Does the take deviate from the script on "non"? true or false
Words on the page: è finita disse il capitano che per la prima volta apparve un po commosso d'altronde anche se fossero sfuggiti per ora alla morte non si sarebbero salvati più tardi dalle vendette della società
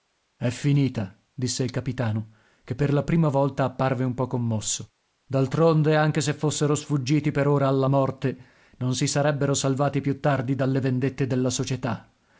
false